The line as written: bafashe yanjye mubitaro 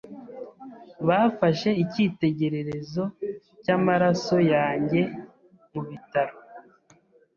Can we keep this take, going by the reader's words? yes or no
no